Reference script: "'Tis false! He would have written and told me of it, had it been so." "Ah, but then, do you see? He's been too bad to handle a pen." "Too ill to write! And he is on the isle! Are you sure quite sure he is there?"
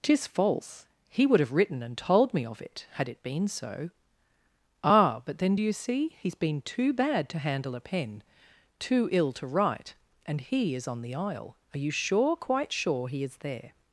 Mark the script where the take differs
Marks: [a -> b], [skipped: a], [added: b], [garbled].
"'Tis false! He would have written and told me of it, had it been so." "Ah, but then, do you see? He's been too bad to handle a pen." "Too ill to write! And he is on the isle! Are you sure quite sure he is there?"